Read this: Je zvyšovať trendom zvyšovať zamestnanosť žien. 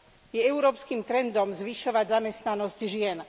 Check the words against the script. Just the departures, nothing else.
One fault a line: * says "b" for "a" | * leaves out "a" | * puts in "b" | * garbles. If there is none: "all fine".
* says "európskym" for "zvyšovať"